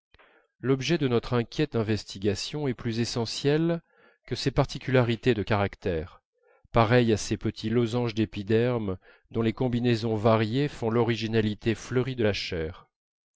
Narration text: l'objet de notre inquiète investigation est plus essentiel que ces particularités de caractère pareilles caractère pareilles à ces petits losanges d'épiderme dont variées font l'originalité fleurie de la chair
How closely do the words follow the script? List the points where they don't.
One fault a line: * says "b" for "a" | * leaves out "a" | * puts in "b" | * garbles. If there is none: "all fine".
* leaves out "caractère pareilles"
* puts in "les combinaisons"